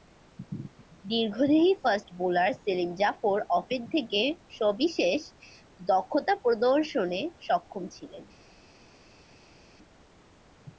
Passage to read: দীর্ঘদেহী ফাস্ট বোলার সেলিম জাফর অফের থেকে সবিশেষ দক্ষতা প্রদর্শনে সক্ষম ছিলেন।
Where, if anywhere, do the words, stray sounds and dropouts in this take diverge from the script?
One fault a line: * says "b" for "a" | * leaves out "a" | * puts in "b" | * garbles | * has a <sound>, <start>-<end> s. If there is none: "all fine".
all fine